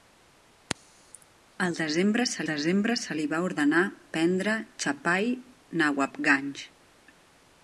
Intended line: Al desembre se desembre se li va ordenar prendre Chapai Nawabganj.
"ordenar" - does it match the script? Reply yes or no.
yes